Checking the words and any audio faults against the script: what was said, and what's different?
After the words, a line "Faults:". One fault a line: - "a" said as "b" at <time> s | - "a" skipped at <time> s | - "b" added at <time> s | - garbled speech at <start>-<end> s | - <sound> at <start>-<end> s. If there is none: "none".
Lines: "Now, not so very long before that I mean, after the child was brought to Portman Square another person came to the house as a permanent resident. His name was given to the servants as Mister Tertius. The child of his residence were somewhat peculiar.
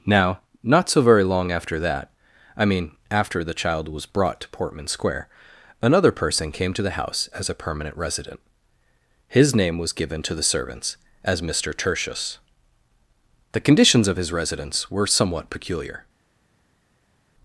"Now, not so very long after that I mean, after the child was brought to Portman Square another person came to the house as a permanent resident. His name was given to the servants as Mister Tertius. The conditions of his residence were somewhat peculiar.
Faults:
- "before" said as "after" at 1.5 s
- "child" said as "conditions" at 13.6 s